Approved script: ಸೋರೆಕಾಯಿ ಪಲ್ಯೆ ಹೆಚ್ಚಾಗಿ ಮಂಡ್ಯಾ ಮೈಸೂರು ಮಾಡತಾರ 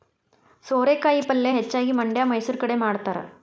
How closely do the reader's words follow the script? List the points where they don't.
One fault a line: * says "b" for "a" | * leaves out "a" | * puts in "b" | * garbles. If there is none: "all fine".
* puts in "ಕಡೆ"